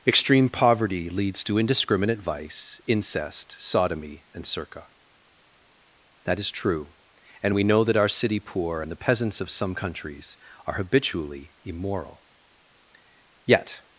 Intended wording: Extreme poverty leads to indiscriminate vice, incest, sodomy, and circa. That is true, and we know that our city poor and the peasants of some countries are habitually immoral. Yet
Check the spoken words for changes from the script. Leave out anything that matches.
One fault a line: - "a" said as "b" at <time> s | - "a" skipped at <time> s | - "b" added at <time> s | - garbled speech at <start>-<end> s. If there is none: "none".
none